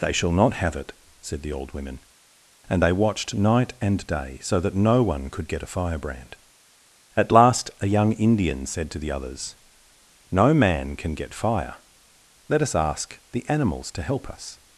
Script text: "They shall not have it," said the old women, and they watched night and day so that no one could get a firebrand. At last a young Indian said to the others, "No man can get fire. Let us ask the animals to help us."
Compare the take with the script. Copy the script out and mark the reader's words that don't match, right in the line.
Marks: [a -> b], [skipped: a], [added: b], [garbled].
"They shall not have it," said the old women, and they watched night and day so that no one could get a firebrand. At last a young Indian said to the others, "No man can get fire. Let us ask the animals to help us."